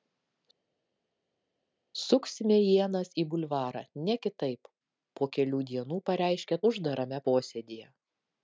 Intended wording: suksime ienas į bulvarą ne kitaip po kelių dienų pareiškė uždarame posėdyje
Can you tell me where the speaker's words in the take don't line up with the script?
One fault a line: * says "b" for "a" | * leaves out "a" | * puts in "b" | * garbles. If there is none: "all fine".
all fine